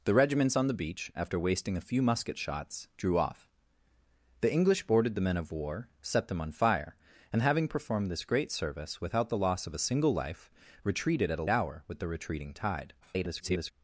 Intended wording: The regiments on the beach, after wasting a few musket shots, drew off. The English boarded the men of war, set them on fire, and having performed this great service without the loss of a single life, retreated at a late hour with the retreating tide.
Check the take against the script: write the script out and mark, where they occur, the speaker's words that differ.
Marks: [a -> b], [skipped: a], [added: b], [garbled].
The regiments on the beach, after wasting a few musket shots, drew off. The English boarded the men of war, set them on fire, and having performed this great service without the loss of a single life, retreated at a [skipped: late] hour with the retreating tide. [garbled]